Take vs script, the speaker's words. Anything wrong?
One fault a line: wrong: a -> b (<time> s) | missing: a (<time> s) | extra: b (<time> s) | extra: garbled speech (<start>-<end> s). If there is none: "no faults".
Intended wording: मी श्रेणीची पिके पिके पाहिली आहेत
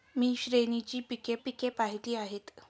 no faults